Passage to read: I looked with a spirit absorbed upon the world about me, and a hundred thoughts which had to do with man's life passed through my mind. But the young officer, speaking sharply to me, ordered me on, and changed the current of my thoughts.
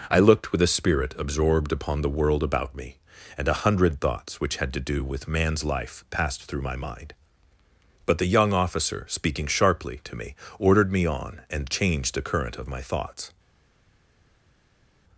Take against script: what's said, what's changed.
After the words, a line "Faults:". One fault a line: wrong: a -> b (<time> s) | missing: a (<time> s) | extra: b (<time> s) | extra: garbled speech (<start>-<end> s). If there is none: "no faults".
I looked with a spirit absorbed upon the world about me, and a hundred thoughts which had to do with man's life passed through my mind. But the young officer, speaking sharply to me, ordered me on, and changed the current of my thoughts.
Faults:
no faults